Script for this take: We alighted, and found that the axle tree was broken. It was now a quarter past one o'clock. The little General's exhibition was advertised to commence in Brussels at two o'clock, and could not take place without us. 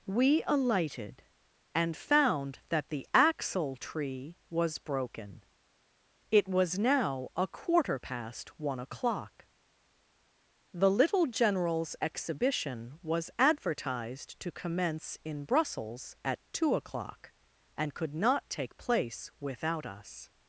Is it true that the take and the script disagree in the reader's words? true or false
false